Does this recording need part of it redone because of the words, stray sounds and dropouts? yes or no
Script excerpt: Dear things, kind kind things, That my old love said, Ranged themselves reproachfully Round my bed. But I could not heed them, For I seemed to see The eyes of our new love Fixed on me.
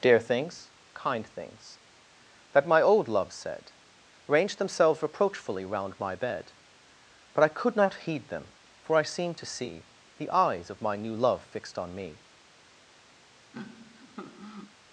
yes